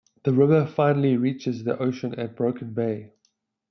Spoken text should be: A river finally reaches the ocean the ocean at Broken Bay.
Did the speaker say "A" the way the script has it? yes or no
no